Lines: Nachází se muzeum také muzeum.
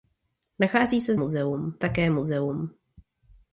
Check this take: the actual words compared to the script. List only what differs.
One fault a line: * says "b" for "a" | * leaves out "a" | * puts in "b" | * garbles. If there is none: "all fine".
all fine